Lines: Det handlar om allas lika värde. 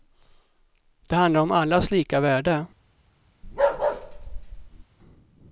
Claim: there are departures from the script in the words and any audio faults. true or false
true